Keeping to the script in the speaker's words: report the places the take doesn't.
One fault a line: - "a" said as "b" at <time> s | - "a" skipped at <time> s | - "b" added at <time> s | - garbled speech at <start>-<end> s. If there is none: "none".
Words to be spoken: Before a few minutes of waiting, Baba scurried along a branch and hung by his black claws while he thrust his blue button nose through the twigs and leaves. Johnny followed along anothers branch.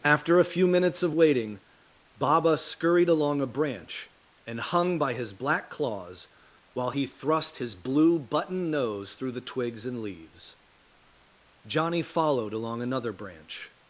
- "Before" said as "After" at 0.0 s
- "anothers" said as "another" at 12.8 s